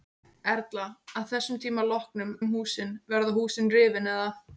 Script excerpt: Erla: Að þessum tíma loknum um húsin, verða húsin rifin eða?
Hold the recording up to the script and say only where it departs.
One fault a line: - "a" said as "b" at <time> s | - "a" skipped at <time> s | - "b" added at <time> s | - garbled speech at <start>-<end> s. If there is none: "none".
none